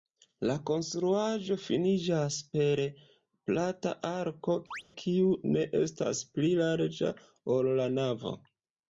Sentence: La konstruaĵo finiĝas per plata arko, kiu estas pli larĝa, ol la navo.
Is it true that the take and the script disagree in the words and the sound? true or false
true